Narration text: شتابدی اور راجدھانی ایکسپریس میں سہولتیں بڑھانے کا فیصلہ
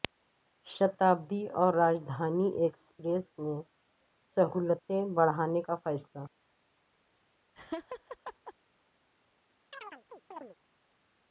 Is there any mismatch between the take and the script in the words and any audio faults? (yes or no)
yes